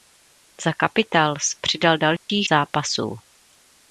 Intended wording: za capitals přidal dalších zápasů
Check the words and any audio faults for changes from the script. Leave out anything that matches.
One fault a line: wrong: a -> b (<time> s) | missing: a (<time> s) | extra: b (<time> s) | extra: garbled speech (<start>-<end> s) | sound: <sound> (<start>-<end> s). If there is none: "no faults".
sound: dropout (2.2-2.3 s)